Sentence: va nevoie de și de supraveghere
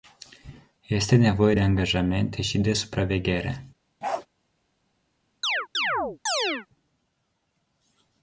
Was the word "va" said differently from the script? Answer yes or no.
yes